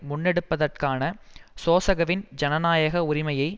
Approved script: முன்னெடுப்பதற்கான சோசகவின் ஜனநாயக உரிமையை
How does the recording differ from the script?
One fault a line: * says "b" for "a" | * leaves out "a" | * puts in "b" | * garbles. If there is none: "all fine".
all fine